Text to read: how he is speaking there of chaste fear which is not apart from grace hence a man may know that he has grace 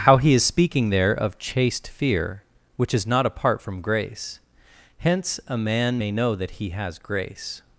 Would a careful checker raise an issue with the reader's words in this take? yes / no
no